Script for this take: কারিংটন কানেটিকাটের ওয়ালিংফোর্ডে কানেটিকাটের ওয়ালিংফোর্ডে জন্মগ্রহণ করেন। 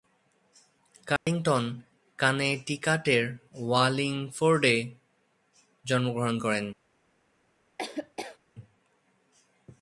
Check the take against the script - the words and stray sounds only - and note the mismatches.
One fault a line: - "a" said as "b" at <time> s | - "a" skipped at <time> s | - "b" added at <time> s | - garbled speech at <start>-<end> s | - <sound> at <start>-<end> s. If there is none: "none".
- dropout at 1.2-1.3 s
- "কানেটিকাটের ওয়ালিংফোর্ডে" skipped at 4.8 s
- laugh at 7.8-8.4 s